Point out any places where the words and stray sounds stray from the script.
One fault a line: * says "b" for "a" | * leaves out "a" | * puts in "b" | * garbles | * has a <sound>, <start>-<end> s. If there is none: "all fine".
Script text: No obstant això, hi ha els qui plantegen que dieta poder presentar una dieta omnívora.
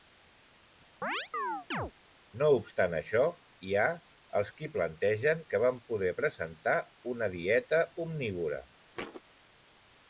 * has a chirp, 1.0-1.9 s
* says "van" for "dieta"
* has a thud, 8.9-9.2 s